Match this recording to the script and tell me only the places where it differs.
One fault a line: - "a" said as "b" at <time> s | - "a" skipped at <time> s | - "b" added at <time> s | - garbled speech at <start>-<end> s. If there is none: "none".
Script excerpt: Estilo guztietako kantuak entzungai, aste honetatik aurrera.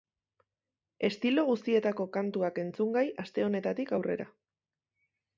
none